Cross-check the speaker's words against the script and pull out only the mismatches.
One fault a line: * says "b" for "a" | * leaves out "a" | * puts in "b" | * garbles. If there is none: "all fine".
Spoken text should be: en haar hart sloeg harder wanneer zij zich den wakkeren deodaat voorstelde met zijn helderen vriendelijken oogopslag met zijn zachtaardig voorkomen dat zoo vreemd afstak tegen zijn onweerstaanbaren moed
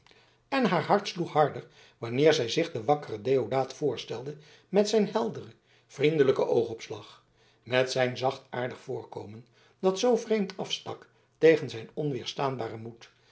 all fine